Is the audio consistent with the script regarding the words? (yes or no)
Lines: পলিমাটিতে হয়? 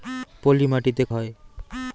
yes